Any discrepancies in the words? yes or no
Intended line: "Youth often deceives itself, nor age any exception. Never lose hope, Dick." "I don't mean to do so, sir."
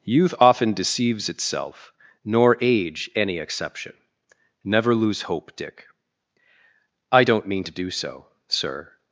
no